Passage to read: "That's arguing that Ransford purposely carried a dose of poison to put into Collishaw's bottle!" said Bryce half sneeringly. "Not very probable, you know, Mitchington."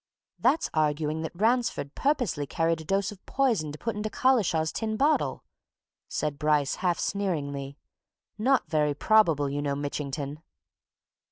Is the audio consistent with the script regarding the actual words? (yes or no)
no